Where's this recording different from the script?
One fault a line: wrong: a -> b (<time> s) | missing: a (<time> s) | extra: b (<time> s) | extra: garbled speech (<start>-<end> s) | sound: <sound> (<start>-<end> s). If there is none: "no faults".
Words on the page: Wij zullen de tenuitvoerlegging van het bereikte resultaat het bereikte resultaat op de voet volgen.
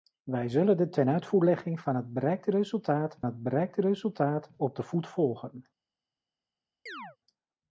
sound: chirp (6.9-7.2 s)